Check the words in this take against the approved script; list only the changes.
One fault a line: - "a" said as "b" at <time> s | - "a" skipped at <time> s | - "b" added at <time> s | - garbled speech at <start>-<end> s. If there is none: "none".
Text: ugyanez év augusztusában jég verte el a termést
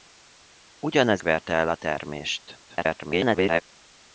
- "év augusztusában jég" skipped at 1.2 s
- garbled speech at 2.7-3.6 s